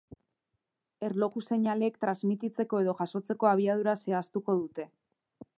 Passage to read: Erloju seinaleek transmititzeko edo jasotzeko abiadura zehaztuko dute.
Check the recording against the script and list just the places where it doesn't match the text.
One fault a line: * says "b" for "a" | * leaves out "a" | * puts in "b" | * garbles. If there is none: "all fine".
all fine